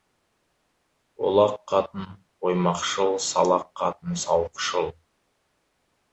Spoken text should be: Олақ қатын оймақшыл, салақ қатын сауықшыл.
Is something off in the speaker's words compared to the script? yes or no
no